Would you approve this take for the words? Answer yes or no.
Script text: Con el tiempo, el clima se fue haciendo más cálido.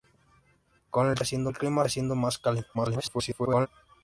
no